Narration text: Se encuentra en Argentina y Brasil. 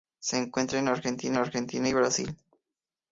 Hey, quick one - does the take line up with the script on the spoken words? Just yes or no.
no